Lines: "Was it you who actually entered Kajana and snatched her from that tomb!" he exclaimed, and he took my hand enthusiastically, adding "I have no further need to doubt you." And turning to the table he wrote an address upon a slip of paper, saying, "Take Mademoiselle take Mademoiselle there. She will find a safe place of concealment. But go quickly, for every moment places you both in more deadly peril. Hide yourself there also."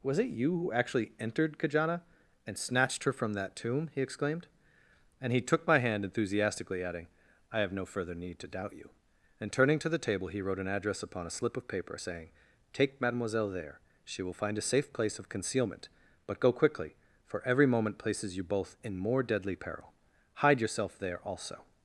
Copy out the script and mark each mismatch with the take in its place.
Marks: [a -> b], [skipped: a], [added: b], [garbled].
"Was it you who actually entered Kajana and snatched her from that tomb!" he exclaimed, and he took my hand enthusiastically, adding "I have no further need to doubt you." And turning to the table he wrote an address upon a slip of paper, saying, "Take Mademoiselle [skipped: take Mademoiselle] there. She will find a safe place of concealment. But go quickly, for every moment places you both in more deadly peril. Hide yourself there also."